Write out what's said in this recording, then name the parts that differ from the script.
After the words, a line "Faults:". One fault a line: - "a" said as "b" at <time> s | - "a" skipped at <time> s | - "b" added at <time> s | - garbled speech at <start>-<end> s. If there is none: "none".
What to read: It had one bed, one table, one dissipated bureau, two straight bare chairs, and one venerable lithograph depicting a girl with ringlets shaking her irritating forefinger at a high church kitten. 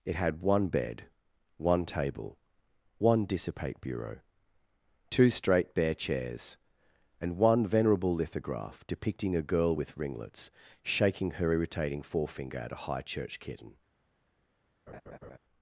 It had one bed, one table, one dissipate bureau, two straight bare chairs, and one venerable lithograph depicting a girl with ringlets shaking her irritating forefinger at a high church kitten.
Faults:
- "dissipated" said as "dissipate" at 3.2 s